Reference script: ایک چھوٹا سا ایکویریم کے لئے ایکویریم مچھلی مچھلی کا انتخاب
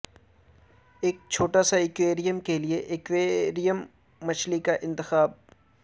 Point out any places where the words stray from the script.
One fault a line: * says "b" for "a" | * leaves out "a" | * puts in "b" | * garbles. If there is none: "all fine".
* leaves out "مچھلی"